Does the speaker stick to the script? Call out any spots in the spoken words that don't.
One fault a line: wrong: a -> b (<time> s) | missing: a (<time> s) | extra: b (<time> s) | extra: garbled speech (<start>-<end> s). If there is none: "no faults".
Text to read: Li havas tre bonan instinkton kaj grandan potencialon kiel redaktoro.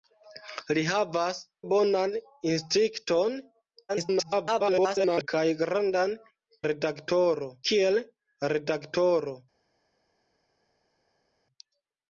missing: tre (1.4 s)
extra: garbled speech (3.9-5.3 s)
wrong: potencialon -> redaktoro (6.7 s)